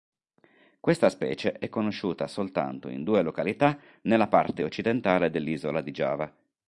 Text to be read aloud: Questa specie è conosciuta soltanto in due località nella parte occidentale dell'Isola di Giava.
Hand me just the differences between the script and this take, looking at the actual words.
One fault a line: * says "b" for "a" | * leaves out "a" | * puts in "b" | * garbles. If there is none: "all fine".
all fine